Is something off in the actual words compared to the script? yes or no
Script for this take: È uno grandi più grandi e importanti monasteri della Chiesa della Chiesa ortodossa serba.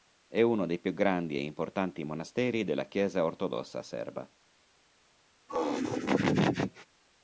yes